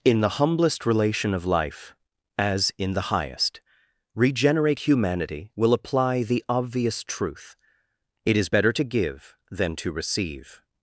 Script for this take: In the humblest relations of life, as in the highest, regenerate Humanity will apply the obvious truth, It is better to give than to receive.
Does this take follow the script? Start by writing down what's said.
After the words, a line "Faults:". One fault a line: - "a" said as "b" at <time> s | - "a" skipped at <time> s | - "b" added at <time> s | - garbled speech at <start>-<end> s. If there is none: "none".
In the humblest relation of life, as in the highest, regenerate Humanity will apply the obvious truth, It is better to give than to receive.
Faults:
- "relations" said as "relation" at 0.9 s